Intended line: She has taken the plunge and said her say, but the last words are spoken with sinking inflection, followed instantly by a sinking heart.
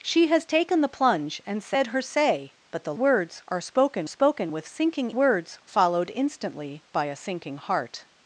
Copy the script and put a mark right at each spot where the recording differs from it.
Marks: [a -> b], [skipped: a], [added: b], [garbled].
She has taken the plunge and said her say, but the [skipped: last] words are spoken [added: spoken] with sinking [inflection, -> words] followed instantly by a sinking heart.